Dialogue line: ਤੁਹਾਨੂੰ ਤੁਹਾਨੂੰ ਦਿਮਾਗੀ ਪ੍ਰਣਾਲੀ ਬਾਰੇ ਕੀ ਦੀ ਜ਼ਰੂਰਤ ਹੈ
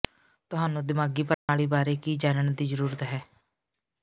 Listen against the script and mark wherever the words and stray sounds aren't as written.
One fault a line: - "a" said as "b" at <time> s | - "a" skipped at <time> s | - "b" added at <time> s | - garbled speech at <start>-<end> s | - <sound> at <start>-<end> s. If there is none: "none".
- "ਤੁਹਾਨੂੰ" skipped at 0.8 s
- dropout at 1.3-1.5 s
- "ਜਾਣਨ" added at 2.2 s